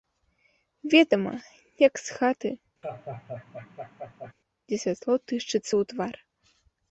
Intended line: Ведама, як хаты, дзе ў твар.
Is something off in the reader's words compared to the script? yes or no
yes